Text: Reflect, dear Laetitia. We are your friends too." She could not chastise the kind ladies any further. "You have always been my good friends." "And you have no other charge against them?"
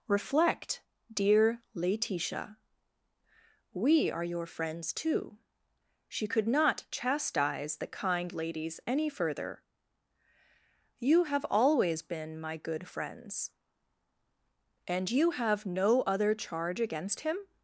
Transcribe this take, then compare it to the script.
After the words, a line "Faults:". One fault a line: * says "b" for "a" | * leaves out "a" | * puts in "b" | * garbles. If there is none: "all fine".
Reflect, dear Laetitia. We are your friends too." She could not chastise the kind ladies any further. "You have always been my good friends." "And you have no other charge against him?"
Faults:
* says "him" for "them"